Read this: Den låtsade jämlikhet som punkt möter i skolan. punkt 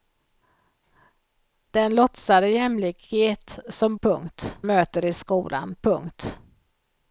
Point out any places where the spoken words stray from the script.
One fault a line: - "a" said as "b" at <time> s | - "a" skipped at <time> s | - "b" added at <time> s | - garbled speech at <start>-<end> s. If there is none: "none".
none